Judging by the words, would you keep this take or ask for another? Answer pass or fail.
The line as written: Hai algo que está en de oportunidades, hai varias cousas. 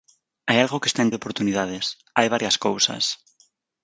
pass